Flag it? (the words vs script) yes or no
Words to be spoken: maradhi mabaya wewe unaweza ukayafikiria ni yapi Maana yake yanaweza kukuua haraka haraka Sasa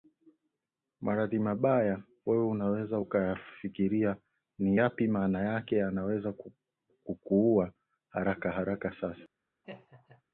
no